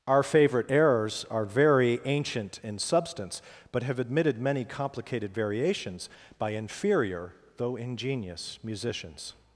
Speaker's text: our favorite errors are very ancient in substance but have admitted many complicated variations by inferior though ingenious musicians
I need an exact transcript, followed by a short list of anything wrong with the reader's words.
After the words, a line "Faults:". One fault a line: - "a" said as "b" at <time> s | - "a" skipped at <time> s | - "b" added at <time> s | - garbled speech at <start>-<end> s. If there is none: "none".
our favorite errors are very ancient in substance but have admitted many complicated variations by inferior though ingenious musicians
Faults:
none